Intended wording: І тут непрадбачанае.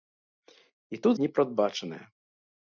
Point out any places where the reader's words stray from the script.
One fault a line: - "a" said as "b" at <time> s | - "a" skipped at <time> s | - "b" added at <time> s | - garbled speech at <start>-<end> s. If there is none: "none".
none